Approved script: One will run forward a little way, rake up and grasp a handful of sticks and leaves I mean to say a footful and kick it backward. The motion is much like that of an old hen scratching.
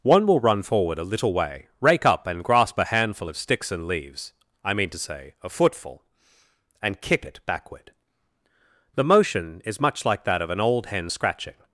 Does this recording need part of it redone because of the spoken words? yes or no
no